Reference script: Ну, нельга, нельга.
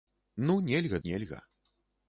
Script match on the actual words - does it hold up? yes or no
yes